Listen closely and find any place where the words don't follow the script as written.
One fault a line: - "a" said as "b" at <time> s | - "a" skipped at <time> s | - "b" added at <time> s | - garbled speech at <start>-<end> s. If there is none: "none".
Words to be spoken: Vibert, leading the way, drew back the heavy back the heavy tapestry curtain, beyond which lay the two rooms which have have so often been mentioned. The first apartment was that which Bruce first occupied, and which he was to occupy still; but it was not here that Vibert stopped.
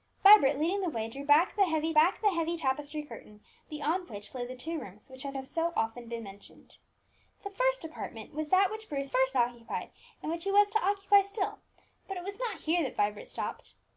none